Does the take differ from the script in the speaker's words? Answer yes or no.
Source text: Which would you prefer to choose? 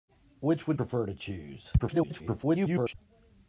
yes